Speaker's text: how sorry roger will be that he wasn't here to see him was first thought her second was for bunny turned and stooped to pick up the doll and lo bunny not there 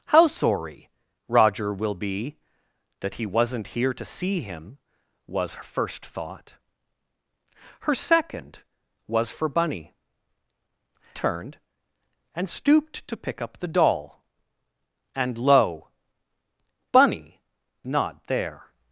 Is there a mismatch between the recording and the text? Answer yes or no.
no